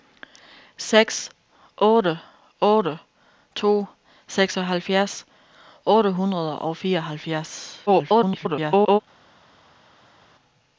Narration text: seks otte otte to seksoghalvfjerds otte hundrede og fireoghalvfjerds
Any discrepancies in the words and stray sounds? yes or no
yes